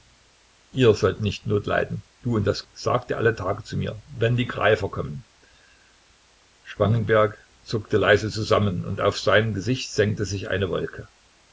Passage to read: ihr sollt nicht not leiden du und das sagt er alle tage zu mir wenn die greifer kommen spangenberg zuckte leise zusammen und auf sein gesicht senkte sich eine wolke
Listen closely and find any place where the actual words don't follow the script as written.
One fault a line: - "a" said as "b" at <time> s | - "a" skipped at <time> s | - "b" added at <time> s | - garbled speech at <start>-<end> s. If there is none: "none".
none